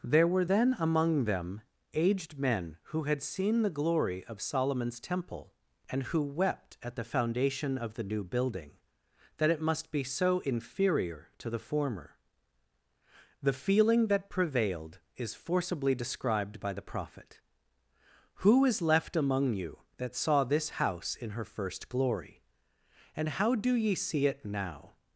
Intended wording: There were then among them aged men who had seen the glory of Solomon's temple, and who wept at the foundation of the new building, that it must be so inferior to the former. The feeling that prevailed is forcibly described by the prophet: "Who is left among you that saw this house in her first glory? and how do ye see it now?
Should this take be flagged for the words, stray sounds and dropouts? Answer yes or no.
no